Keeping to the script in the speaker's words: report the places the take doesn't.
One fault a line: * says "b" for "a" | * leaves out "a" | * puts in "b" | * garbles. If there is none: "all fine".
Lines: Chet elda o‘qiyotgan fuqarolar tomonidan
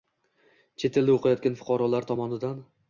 all fine